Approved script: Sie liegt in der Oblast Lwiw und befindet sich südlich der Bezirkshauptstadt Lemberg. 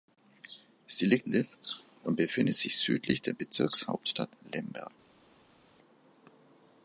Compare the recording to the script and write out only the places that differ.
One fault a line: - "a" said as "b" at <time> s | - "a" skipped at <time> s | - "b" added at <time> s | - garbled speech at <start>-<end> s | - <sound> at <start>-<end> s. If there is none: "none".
- "in der Oblast" skipped at 1.3 s